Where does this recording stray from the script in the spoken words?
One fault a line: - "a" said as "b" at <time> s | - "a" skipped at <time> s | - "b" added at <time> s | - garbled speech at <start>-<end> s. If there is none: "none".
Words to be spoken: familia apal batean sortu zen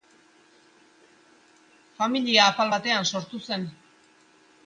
none